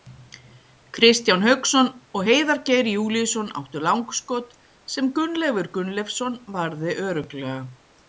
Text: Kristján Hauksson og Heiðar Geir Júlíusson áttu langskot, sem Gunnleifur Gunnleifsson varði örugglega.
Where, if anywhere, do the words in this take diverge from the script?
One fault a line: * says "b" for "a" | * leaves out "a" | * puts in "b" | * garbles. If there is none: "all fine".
all fine